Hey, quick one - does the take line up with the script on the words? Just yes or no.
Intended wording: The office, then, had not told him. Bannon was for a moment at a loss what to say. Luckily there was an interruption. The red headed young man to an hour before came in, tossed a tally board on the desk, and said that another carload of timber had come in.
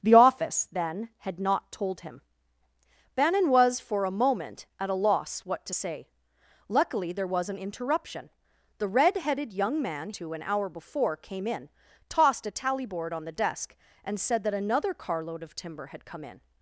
yes